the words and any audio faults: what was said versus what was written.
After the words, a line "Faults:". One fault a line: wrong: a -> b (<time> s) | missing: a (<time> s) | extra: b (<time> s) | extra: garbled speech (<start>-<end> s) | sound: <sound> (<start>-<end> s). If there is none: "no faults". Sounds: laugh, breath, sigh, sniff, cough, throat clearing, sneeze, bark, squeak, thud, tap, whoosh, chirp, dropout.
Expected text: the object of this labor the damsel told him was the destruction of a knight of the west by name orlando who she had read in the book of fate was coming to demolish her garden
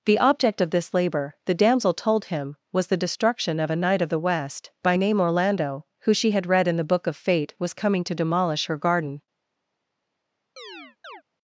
the object of this labor the damsel told him was the destruction of a knight of the west by name orlando who she had read in the book of fate was coming to demolish her garden
Faults:
sound: chirp (10.6-11.2 s)